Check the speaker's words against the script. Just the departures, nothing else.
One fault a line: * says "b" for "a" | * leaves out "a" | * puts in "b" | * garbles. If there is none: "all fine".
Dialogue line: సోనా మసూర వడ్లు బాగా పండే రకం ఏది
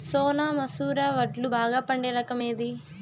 all fine